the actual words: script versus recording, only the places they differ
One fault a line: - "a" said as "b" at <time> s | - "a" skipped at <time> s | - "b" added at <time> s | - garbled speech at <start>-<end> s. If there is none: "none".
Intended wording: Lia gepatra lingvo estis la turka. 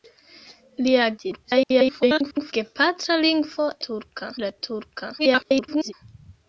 - garbled speech at 1.2-2.5 s
- "estis" said as "turka" at 3.9 s
- garbled speech at 5.2-5.9 s